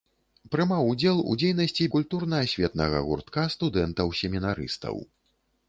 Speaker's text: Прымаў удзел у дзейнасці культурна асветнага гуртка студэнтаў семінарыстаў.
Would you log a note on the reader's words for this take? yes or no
no